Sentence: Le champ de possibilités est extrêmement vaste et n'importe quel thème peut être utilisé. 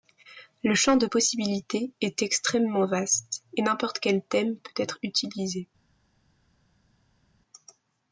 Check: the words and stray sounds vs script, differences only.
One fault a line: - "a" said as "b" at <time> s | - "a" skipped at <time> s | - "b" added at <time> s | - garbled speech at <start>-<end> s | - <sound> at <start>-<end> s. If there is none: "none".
none